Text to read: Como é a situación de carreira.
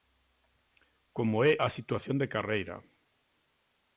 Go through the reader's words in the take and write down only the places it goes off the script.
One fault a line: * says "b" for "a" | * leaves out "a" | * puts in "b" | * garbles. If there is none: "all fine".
all fine